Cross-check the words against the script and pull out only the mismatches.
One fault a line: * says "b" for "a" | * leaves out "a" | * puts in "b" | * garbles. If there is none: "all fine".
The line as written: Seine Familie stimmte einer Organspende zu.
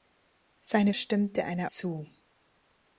* leaves out "Familie"
* leaves out "Organspende"